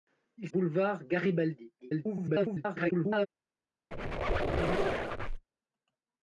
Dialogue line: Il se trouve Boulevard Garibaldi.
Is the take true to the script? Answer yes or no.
no